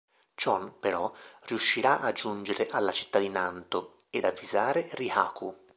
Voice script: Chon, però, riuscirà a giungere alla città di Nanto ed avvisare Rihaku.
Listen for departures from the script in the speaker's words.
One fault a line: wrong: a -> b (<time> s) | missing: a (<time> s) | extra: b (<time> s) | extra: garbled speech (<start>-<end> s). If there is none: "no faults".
no faults